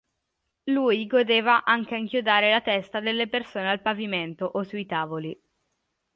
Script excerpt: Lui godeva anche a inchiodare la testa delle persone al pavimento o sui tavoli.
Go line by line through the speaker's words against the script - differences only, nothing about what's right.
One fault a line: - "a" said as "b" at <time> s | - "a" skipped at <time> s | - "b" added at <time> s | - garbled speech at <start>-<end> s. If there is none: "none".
none